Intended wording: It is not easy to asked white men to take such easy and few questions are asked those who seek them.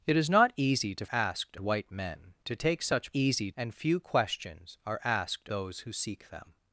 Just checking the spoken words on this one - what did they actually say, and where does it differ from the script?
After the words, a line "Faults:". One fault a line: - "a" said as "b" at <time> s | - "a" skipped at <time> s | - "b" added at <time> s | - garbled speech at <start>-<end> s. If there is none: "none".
It is not easy to asked white men to take such easy and few questions are asked those who seek them.
Faults:
none